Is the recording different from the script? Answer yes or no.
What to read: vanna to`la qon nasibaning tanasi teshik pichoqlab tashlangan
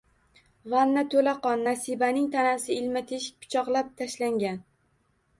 yes